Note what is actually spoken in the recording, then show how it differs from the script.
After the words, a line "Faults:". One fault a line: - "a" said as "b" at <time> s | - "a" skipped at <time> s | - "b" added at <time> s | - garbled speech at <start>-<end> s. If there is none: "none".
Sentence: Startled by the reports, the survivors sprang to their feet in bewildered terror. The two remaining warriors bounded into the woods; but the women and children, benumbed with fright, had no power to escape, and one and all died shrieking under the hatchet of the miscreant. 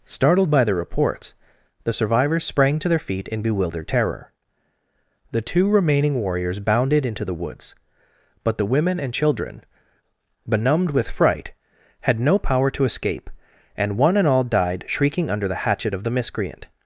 Startled by the reports, the survivors sprang to their feet in bewildered terror. The two remaining warriors bounded into the woods; but the women and children, benumbed with fright, had no power to escape, and one and all died shrieking under the hatchet of the miscreant.
Faults:
none